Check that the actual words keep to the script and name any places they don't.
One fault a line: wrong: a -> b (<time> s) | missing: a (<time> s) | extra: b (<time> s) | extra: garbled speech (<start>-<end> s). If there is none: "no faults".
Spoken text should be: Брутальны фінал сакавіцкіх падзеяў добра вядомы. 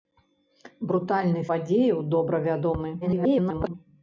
missing: фінал сакавіцкіх (1.4 s)
extra: garbled speech (3.0-3.7 s)